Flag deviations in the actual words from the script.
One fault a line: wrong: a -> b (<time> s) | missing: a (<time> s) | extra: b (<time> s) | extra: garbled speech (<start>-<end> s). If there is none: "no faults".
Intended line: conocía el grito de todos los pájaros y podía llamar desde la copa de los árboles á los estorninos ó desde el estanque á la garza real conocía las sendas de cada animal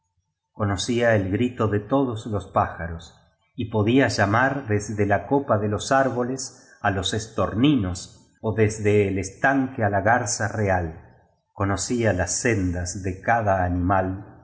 no faults